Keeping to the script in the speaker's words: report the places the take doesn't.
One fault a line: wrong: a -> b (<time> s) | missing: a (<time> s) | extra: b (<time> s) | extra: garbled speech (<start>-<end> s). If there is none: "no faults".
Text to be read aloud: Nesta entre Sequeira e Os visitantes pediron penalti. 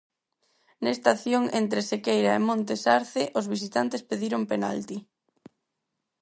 extra: acción (1.1 s)
extra: Montes Arce (2.5 s)